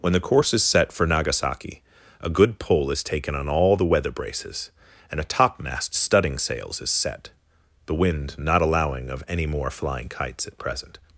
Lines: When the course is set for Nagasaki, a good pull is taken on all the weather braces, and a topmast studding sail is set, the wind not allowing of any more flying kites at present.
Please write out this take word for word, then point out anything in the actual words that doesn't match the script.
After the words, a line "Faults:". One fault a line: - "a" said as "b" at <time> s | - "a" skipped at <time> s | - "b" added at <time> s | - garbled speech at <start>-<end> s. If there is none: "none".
When the course is set for Nagasaki, a good pull is taken on all the weather braces, and a topmast studding sails is set, the wind not allowing of any more flying kites at present.
Faults:
- "sail" said as "sails" at 6.4 s